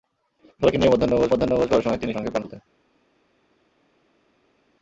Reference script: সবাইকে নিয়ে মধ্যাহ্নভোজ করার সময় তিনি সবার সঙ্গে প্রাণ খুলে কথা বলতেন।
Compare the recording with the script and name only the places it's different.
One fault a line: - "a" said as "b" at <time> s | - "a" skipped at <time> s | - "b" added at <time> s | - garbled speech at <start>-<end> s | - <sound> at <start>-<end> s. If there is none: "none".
- "মধ্যাহ্নভোজ" added at 1.3 s
- "সবার" skipped at 2.1 s
- "খুলে কথা" skipped at 2.4 s